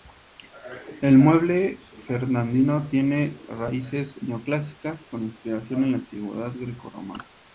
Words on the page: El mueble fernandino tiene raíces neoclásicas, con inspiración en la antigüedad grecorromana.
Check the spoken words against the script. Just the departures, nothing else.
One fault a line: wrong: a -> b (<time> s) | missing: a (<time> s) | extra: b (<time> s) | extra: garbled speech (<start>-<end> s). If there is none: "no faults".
no faults